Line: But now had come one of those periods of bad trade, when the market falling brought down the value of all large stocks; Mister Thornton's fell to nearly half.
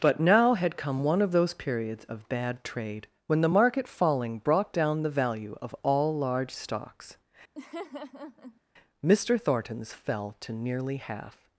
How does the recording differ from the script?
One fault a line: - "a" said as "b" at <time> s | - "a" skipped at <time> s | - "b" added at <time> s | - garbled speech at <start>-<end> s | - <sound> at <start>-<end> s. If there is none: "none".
- laugh at 7.6-8.6 s